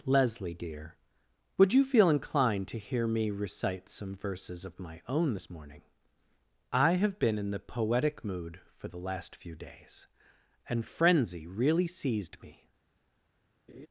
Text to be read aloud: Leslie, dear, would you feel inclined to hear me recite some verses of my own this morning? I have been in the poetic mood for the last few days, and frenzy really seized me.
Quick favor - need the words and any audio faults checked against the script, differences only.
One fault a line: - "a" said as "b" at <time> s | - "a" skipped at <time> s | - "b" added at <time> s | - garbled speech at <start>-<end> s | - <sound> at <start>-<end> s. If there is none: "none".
- laugh at 13.7-13.9 s